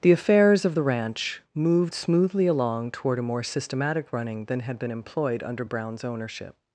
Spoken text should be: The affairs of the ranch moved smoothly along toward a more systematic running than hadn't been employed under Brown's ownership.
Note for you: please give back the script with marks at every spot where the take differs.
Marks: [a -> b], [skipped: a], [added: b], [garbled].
The affairs of the ranch moved smoothly along toward a more systematic running than [hadn't -> had] been employed under Brown's ownership.